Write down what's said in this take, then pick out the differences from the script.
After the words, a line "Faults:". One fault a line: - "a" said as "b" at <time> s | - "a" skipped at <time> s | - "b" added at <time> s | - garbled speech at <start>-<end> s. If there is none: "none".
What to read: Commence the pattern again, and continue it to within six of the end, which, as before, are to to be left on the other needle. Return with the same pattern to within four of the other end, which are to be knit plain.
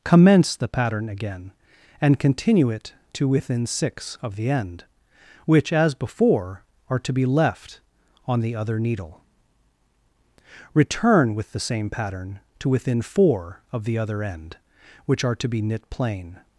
Commence the pattern again, and continue it to within six of the end, which, as before, are to be left on the other needle. Return with the same pattern to within four of the other end, which are to be knit plain.
Faults:
- "to" skipped at 7.1 s